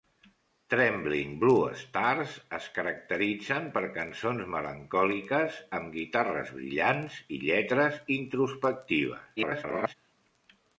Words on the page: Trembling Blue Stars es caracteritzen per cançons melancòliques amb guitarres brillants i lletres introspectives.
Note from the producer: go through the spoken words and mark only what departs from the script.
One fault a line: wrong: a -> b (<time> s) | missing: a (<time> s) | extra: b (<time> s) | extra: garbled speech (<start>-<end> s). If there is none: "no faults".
extra: garbled speech (9.4-9.9 s)